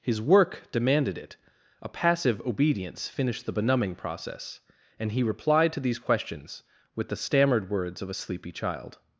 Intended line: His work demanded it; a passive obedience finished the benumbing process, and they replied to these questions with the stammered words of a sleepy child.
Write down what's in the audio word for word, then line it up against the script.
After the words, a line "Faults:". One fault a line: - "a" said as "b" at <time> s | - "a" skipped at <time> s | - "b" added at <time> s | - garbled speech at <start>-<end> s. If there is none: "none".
His work demanded it; a passive obedience finished the benumbing process, and he replied to these questions with the stammered words of a sleepy child.
Faults:
- "they" said as "he" at 5.1 s